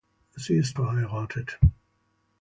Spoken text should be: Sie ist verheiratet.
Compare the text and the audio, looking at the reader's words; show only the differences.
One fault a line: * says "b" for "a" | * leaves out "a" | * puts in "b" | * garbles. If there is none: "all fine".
all fine